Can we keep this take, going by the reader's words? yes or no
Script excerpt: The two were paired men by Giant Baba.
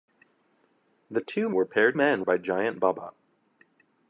yes